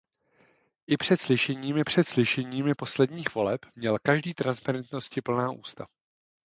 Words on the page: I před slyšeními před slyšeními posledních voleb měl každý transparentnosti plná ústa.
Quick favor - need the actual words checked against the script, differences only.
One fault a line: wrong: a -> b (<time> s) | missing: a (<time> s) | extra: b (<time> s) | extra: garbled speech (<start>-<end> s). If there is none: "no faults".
no faults